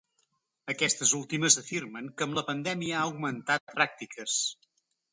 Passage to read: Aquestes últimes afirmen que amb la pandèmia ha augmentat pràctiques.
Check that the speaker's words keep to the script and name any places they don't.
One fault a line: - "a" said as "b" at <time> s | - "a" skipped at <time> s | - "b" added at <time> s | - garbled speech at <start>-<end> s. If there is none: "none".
none